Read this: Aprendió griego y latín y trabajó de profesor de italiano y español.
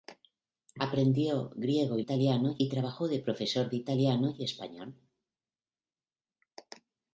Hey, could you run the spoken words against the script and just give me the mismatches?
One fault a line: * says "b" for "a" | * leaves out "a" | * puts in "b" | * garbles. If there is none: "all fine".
* says "italiano" for "latín"